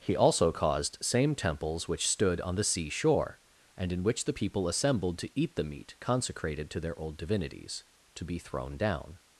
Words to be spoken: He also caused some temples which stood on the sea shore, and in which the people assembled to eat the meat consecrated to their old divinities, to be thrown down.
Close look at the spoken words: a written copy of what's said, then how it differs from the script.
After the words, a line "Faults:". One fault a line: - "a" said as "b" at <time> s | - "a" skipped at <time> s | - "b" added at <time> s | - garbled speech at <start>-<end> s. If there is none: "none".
He also caused same temples which stood on the sea shore, and in which the people assembled to eat the meat consecrated to their old divinities, to be thrown down.
Faults:
- "some" said as "same" at 1.0 s